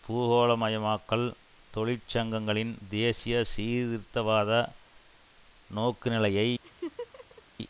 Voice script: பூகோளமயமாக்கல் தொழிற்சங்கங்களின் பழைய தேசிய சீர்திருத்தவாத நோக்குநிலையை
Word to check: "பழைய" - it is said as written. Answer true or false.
false